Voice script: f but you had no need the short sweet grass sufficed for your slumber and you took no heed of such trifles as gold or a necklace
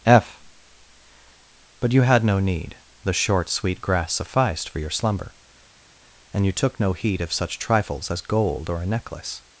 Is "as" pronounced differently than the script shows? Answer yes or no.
no